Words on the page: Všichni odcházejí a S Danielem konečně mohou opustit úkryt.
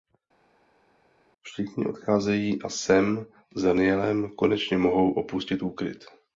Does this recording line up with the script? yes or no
no